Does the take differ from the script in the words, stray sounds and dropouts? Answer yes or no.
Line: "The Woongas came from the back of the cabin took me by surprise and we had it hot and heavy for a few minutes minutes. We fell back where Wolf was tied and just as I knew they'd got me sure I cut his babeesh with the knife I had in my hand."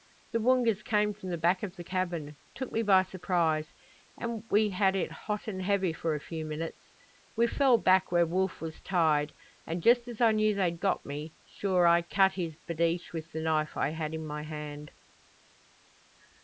yes